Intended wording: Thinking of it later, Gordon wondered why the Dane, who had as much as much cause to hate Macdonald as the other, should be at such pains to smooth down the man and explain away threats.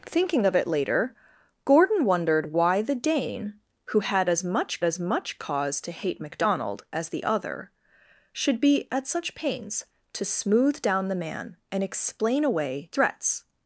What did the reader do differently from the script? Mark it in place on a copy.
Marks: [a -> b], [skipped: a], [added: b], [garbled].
Thinking of it later, Gordon wondered why the Dane, who had as much as much cause to hate Macdonald as the other, should be at such pains to smooth down the man and explain away threats.